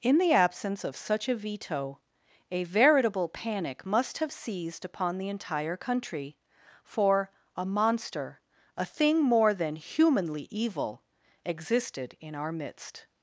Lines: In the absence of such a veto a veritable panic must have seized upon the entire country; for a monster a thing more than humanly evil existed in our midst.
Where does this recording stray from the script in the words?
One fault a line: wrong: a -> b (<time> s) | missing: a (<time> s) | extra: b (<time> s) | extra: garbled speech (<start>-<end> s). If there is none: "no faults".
no faults